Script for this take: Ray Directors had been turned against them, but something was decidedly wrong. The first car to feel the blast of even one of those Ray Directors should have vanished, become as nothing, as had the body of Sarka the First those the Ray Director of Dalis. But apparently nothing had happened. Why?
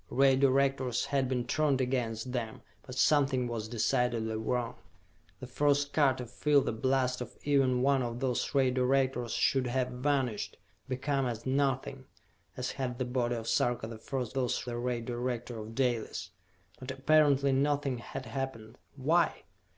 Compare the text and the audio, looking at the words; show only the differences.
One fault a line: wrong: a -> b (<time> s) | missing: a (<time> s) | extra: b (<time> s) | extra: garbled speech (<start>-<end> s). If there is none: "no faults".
no faults